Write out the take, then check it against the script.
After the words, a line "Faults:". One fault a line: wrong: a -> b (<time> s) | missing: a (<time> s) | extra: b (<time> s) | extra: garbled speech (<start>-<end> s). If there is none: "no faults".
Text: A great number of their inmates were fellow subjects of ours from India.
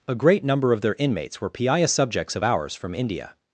A great number of their inmates were piaya subjects of ours from India.
Faults:
wrong: fellow -> piaya (1.5 s)